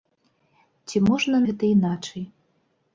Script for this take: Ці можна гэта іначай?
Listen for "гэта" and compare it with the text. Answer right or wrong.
right